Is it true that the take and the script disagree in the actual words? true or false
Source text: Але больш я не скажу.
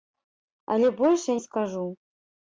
false